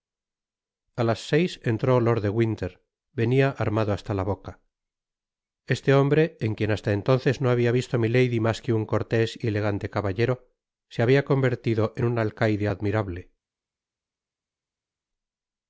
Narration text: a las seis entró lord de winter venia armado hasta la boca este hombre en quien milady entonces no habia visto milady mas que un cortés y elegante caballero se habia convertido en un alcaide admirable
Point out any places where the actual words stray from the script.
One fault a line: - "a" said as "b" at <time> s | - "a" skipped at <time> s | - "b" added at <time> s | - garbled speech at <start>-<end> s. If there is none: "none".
- "milady" said as "hasta" at 6.7 s